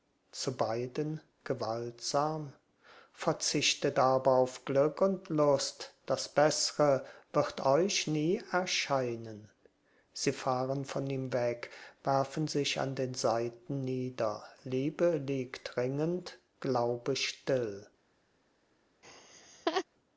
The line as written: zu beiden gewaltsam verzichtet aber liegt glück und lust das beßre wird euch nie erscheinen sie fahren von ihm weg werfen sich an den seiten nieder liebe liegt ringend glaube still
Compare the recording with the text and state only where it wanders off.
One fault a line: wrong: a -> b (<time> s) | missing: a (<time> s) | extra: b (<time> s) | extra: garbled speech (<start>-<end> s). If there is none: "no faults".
wrong: liegt -> auf (4.3 s)